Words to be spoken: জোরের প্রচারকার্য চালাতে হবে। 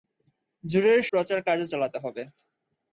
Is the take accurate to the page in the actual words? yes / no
yes